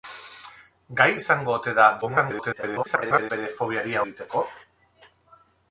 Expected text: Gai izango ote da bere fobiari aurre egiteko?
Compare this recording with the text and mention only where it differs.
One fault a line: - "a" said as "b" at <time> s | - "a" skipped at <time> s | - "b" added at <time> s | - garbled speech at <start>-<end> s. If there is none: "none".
- garbled speech at 2.0-3.3 s
- "aurre" skipped at 4.0 s